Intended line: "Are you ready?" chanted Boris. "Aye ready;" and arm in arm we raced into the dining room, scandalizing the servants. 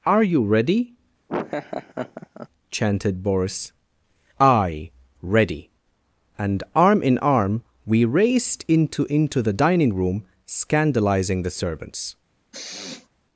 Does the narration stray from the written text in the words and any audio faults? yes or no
yes